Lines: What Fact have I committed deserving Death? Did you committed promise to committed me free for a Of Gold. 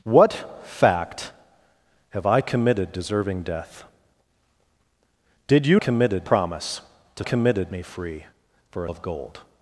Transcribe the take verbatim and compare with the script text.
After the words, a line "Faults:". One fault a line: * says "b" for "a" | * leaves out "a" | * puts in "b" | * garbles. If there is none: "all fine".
What Fact have I committed deserving Death? Did you committed promise to committed me free for a Of Gold.
Faults:
all fine